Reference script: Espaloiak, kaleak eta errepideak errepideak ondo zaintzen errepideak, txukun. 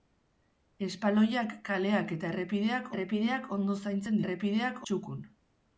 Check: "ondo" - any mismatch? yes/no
no